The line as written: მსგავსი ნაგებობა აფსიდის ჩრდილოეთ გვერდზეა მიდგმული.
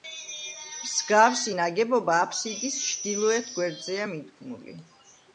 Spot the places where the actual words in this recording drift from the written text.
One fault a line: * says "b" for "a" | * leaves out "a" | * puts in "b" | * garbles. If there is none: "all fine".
all fine